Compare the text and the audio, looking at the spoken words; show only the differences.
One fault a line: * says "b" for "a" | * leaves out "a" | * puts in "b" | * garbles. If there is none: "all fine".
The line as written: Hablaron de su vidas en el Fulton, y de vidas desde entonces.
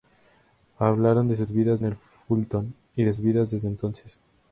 all fine